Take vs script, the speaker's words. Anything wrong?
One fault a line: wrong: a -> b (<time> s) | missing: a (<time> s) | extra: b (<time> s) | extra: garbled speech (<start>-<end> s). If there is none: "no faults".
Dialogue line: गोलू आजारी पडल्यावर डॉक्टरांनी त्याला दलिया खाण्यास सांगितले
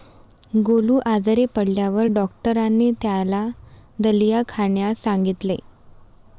no faults